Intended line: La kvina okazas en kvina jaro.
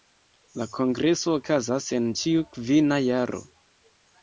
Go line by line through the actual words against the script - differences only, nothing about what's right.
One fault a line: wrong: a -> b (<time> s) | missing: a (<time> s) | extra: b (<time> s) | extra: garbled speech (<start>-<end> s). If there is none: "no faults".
wrong: kvina -> kongreso (0.8 s)
extra: ĉiu (2.2 s)